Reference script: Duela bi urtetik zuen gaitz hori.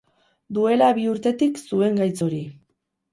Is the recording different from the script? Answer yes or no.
no